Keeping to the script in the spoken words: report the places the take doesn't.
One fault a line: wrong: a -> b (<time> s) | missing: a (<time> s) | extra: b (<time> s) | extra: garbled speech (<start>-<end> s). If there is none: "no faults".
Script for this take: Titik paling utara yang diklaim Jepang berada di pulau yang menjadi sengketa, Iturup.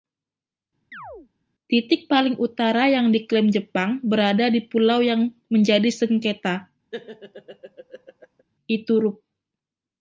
no faults